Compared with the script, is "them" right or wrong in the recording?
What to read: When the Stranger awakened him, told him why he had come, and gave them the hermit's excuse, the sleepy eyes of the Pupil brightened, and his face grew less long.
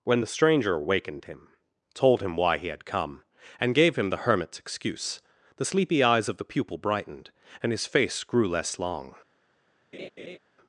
wrong